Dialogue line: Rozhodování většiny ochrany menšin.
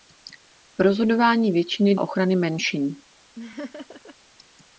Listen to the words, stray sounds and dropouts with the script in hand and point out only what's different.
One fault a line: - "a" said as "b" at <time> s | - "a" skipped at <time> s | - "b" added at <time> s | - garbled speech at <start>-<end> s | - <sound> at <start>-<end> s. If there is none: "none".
- laugh at 3.4-4.2 s